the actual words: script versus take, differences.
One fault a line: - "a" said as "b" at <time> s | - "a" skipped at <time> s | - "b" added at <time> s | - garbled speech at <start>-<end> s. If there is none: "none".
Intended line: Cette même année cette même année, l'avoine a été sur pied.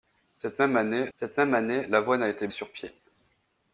none